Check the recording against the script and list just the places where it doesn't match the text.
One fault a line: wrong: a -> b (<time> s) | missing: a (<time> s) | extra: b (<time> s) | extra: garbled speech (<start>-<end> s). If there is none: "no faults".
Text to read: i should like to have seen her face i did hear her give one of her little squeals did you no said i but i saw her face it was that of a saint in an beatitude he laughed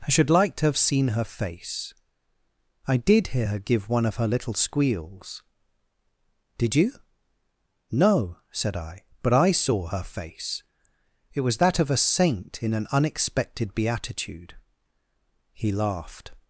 extra: unexpected (12.9 s)